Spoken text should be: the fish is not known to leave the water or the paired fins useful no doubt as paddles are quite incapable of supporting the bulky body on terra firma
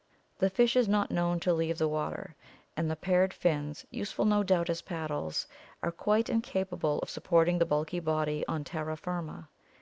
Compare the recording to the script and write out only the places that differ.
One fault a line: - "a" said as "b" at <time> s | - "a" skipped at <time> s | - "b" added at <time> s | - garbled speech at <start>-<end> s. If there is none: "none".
- "or" said as "and" at 2.8 s